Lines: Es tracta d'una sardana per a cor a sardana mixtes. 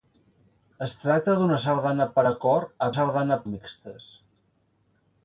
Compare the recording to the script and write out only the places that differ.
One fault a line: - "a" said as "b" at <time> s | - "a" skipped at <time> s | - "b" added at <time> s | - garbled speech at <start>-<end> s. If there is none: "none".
none